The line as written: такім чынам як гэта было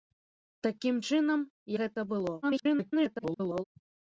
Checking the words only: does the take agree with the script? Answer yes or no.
no